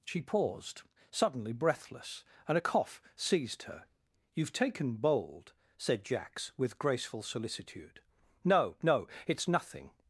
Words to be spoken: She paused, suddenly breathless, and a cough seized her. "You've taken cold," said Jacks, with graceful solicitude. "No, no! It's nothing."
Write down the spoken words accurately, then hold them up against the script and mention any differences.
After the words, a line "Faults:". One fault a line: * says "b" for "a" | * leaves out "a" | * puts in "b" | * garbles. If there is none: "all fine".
She paused, suddenly breathless, and a cough seized her. "You've taken bold," said Jacks, with graceful solicitude. "No, no! It's nothing."
Faults:
* says "bold" for "cold"